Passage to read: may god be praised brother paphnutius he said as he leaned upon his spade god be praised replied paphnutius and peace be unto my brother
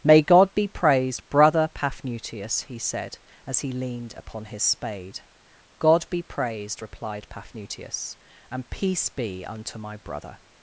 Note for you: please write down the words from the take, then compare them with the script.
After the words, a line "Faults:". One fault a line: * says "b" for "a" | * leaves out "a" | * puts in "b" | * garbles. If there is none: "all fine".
may god be praised brother paphnutius he said as he leaned upon his spade god be praised replied paphnutius and peace be unto my brother
Faults:
all fine